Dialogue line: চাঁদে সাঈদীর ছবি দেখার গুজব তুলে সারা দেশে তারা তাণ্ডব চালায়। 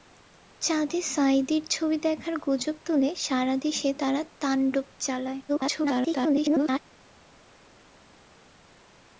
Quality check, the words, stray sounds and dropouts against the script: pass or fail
fail